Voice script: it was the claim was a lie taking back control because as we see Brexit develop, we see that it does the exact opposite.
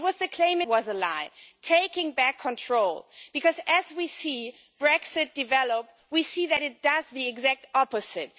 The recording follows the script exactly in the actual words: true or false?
true